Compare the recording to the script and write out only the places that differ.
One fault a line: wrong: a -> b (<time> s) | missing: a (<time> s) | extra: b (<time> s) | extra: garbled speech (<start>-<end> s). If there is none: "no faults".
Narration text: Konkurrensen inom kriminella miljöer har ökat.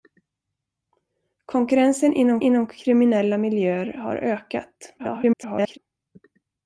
extra: inom (2.4 s)
extra: garbled speech (5.0-5.8 s)